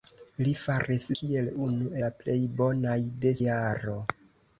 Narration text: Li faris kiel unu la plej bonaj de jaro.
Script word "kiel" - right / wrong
right